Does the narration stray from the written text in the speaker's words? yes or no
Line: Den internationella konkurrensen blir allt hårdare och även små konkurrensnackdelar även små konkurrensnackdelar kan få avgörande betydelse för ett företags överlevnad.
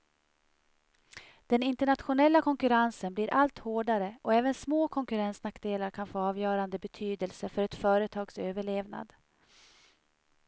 yes